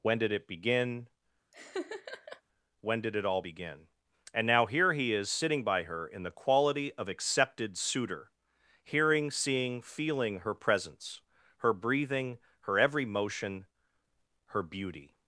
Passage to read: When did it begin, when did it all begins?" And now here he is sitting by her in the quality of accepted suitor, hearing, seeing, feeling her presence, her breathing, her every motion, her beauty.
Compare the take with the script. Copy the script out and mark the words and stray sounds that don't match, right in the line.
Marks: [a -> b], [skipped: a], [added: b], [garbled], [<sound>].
When did it begin, [laugh] when did it all [begins?" -> begin] And now here he is sitting by her in the quality of accepted suitor, hearing, seeing, feeling her presence, her breathing, her every motion, her beauty.